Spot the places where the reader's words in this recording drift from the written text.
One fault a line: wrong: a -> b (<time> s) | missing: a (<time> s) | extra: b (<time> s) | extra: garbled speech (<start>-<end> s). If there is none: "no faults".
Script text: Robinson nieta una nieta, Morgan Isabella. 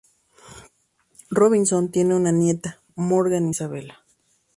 wrong: nieta -> tiene (1.9 s)